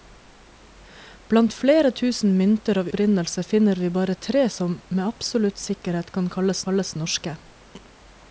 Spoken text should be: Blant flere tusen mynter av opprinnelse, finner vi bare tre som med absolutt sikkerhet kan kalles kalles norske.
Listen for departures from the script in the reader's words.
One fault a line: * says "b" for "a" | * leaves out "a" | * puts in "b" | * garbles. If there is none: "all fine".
all fine